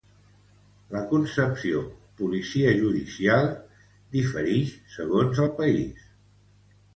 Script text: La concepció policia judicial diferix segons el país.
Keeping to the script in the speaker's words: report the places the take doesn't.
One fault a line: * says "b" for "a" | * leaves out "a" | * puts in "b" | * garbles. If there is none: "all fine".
all fine